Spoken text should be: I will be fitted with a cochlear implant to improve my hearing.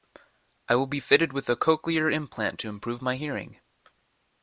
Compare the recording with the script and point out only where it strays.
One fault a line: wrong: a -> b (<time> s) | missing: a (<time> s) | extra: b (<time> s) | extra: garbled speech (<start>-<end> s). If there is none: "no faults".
no faults